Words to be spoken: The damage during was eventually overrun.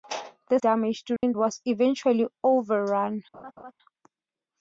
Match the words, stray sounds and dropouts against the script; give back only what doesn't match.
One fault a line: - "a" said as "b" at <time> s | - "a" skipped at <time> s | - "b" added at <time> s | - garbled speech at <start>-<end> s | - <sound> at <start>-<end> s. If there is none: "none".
- dropout at 1.2-1.2 s
- laugh at 3.3-3.7 s